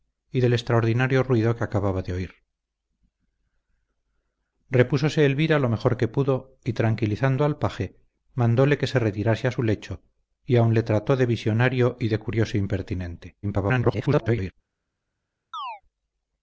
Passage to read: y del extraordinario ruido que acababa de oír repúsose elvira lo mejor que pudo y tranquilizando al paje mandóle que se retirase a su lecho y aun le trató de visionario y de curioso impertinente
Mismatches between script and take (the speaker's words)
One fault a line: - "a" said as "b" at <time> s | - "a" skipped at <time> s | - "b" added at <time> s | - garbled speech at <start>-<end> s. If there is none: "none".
- garbled speech at 13.4-14.5 s